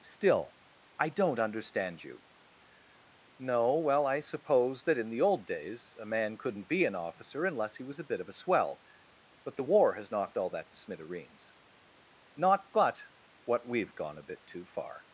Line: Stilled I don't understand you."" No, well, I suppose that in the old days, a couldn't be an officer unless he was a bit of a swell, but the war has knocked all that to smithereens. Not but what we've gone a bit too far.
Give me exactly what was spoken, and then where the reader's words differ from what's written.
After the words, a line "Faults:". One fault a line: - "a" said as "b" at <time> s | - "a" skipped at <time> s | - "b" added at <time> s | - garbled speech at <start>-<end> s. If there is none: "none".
Still I don't understand you."" No, well, I suppose that in the old days, a man couldn't be an officer unless he was a bit of a swell, but the war has knocked all that to smithereens. Not but what we've gone a bit too far.
Faults:
- "Stilled" said as "Still" at 0.0 s
- "man" added at 6.0 s